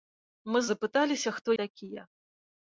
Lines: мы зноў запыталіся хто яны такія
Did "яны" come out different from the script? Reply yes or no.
yes